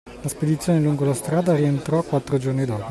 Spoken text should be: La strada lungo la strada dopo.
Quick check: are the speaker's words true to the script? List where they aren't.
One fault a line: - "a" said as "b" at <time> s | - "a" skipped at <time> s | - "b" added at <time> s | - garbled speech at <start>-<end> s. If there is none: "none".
- "strada" said as "spedizione" at 0.3 s
- "rientrò quattro giorni" added at 1.6 s